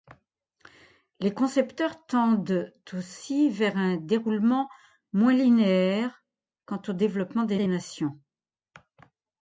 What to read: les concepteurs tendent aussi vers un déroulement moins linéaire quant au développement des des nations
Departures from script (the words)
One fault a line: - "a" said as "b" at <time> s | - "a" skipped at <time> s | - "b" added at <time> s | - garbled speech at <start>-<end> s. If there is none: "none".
none